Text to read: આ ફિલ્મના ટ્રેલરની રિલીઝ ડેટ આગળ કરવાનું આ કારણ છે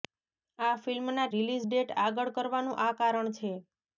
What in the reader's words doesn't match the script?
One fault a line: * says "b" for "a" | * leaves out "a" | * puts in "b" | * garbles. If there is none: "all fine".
* leaves out "ટ્રેલરની"